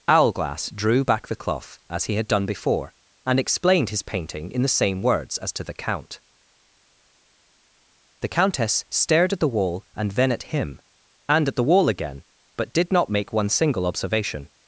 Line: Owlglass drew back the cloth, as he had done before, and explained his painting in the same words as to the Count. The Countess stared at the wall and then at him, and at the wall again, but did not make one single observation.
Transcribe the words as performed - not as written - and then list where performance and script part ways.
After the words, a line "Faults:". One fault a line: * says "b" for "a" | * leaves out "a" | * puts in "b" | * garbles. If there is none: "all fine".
Owlglass drew back the cloth, as he had done before, and explained his painting in the same words as to the Count. The Countess stared at the wall and then at him, and at the wall again, but did not make one single observation.
Faults:
all fine